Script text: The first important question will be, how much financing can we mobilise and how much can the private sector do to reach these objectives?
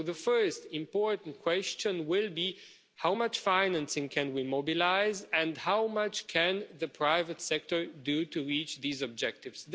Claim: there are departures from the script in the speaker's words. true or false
false